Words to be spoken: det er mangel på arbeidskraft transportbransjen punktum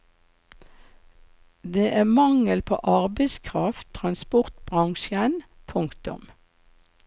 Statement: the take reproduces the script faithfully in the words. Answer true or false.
true